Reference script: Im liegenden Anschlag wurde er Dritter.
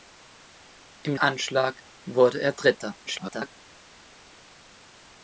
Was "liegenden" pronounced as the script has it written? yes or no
no